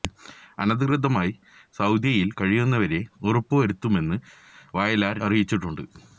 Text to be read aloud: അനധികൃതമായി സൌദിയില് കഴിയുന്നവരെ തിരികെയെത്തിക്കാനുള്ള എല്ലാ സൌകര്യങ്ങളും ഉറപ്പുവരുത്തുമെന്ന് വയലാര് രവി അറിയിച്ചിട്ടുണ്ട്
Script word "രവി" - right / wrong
wrong